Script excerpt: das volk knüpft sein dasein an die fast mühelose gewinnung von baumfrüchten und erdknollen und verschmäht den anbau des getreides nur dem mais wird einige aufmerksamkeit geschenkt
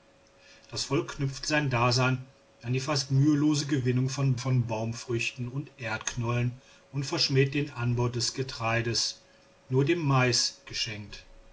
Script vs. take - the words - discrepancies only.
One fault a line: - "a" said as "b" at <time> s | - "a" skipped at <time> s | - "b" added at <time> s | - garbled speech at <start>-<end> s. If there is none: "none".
- "von" added at 4.4 s
- "wird einige aufmerksamkeit" skipped at 10.6 s